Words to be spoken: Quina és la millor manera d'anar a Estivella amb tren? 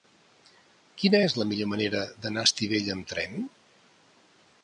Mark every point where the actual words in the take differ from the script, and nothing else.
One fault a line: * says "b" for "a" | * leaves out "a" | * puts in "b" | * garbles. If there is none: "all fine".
all fine